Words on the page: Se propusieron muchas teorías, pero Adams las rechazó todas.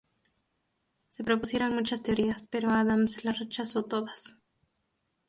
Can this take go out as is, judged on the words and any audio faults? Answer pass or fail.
pass